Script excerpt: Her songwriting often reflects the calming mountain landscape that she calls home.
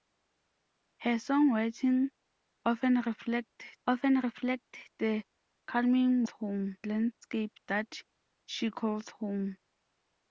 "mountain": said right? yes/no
no